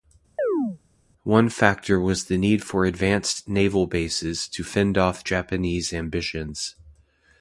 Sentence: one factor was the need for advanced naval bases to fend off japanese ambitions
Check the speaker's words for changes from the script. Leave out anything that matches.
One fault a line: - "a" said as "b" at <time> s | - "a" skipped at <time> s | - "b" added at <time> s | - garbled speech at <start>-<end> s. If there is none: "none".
none